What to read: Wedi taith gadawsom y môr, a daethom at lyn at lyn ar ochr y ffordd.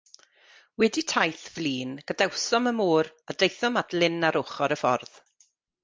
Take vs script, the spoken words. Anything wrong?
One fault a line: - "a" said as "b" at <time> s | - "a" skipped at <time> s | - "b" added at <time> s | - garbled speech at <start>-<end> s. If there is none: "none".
- "flin" added at 1.6 s
- "at lyn" skipped at 4.3 s